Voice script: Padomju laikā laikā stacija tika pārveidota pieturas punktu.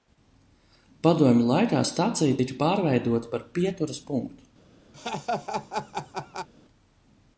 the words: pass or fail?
fail